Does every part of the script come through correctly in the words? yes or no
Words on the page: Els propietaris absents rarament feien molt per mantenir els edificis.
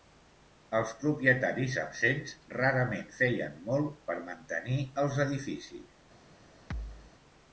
yes